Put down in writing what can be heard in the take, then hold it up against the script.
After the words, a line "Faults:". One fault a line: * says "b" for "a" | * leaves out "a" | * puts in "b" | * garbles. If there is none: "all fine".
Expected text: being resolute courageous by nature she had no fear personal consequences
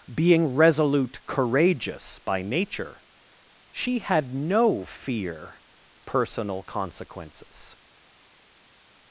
being resolute courageous by nature she had no fear personal consequences
Faults:
all fine